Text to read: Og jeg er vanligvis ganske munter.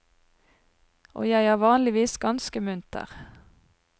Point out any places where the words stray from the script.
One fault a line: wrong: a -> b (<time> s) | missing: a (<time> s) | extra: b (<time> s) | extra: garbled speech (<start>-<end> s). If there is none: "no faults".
no faults